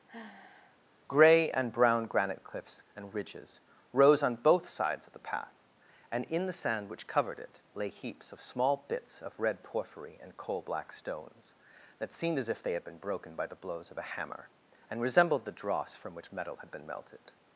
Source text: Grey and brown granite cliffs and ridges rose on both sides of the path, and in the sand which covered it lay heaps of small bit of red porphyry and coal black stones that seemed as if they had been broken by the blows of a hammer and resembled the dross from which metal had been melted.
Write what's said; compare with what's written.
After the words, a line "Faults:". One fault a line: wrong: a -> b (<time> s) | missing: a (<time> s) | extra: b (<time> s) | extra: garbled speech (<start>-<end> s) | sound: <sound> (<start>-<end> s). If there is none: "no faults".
Grey and brown granite cliffs and ridges rose on both sides of the path, and in the sand which covered it lay heaps of small bits of red porphyry and coal black stones that seemed as if they had been broken by the blows of a hammer and resembled the dross from which metal had been melted.
Faults:
sound: sigh (0.1-0.8 s)
wrong: bit -> bits (8.9 s)